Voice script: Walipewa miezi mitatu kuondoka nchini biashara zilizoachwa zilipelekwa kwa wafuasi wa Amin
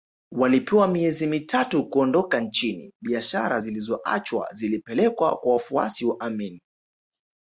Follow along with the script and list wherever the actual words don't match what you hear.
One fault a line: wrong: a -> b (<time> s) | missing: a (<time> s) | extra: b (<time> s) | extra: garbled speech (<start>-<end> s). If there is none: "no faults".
no faults